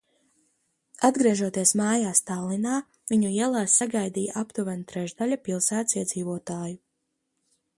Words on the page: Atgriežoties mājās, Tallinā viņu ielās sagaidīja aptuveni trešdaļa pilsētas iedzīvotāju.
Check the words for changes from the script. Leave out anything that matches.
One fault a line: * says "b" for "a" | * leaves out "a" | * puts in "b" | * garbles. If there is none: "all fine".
all fine